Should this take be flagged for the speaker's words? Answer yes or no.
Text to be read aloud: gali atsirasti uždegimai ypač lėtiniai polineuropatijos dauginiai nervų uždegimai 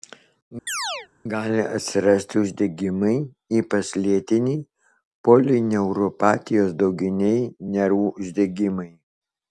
no